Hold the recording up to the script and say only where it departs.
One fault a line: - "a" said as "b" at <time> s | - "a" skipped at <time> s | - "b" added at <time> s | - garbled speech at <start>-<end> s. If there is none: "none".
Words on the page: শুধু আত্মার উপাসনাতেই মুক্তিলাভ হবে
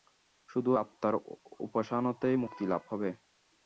none